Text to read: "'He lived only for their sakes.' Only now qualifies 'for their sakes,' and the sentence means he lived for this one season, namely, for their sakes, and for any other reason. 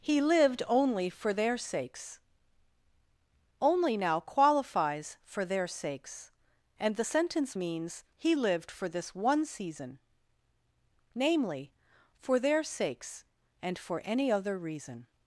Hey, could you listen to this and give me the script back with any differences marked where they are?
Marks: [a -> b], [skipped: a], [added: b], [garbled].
"'He lived only for their sakes.' Only now qualifies 'for their sakes,' and the sentence means he lived for this one season, namely, for their sakes, and for any other reason.